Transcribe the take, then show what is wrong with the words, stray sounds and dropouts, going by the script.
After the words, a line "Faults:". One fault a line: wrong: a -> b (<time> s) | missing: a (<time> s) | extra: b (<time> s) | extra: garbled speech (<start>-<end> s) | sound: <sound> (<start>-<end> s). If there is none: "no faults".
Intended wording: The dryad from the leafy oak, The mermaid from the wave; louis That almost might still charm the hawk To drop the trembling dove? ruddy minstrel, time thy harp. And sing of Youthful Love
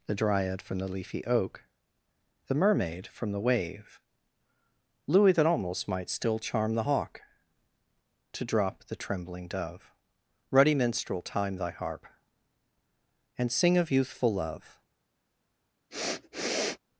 The dryad from the leafy oak, The mermaid from the wave; louis That almost might still charm the hawk To drop the trembling dove? ruddy minstrel, time thy harp. And sing of Youthful Love
Faults:
sound: sniff (15.9-16.8 s)